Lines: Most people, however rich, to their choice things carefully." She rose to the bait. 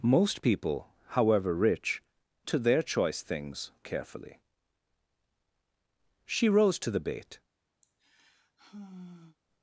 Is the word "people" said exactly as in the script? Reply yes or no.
yes